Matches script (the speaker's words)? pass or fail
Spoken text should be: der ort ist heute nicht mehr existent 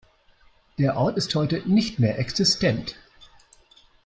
pass